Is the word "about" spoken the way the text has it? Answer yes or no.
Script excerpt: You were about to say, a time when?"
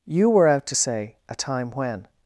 no